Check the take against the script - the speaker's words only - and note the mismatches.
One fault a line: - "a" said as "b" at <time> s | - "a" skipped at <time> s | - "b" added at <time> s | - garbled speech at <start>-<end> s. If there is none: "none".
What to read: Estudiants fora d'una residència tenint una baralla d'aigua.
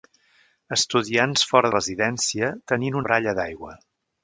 - "d'una" skipped at 1.7 s
- "una" skipped at 3.0 s